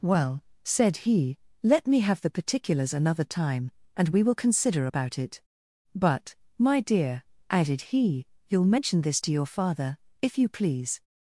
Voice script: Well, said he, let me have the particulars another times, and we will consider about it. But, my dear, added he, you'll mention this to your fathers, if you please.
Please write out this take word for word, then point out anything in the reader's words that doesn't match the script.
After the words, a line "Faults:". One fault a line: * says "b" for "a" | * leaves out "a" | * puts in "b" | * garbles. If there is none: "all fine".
Well, said he, let me have the particulars another time, and we will consider about it. But, my dear, added he, you'll mention this to your father, if you please.
Faults:
* says "time" for "times"
* says "father" for "fathers"